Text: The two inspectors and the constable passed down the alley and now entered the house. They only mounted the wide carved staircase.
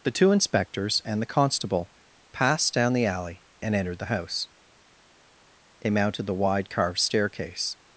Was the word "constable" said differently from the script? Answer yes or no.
no